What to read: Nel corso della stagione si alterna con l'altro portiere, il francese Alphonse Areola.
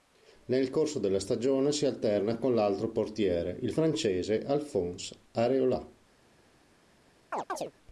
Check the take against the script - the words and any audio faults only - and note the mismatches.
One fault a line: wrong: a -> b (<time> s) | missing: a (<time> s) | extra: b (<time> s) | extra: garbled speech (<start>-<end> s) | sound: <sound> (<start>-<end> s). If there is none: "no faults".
sound: chirp (7.3-7.7 s)